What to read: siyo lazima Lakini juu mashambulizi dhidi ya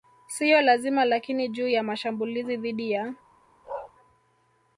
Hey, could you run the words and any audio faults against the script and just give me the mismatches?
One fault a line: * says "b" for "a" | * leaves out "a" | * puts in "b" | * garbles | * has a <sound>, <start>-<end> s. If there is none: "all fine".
* puts in "ya"
* has a bark, 3.6-3.9 s